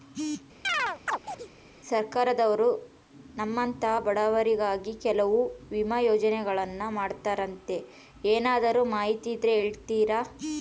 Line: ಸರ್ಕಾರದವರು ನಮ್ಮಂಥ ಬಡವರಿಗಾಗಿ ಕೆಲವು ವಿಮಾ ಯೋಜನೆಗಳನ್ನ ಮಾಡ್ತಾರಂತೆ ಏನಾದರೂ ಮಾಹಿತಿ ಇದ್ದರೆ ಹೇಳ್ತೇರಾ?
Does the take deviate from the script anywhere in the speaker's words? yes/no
no